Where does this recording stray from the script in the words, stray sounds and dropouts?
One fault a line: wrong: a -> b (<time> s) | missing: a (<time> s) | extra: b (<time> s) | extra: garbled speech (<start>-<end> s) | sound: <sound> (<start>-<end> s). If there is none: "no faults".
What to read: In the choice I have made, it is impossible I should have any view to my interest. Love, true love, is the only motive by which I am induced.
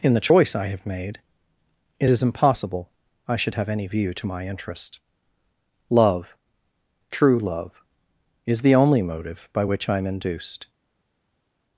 no faults